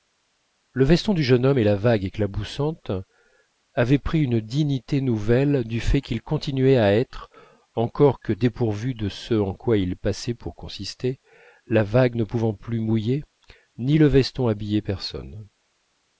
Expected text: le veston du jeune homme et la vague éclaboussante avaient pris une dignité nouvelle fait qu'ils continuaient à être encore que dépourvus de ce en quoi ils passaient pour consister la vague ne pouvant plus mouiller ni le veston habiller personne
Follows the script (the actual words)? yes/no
no